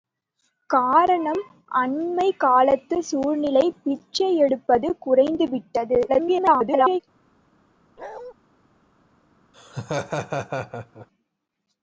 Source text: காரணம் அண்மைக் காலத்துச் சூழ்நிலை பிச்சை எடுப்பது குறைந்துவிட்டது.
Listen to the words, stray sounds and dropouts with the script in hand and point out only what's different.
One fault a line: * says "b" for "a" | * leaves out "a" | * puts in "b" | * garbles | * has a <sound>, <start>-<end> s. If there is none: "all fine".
* garbles
* has a bark, 8.0-8.3 s
* has a laugh, 9.5-11.1 s